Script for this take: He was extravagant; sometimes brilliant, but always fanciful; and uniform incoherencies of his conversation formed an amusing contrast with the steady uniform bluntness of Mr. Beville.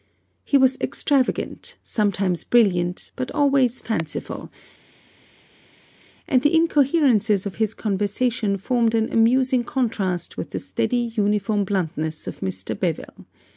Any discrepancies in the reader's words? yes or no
yes